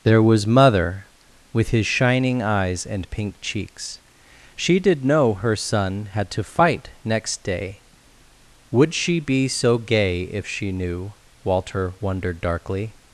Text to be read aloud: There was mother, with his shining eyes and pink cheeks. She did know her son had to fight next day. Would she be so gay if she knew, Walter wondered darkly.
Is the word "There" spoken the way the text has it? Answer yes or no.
yes